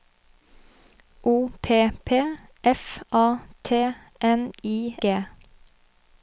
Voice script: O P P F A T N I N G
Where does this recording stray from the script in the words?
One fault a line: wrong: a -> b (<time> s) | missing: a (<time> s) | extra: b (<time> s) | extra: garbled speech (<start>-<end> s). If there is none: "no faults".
missing: N (5.0 s)